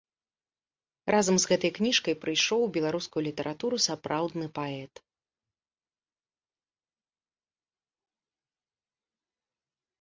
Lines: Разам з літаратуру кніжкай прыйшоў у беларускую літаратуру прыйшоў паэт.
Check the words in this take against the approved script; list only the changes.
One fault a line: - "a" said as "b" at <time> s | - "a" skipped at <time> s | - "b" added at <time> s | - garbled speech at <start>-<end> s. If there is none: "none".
- "літаратуру" said as "гэтай" at 1.5 s
- "прыйшоў" said as "сапраўдны" at 3.9 s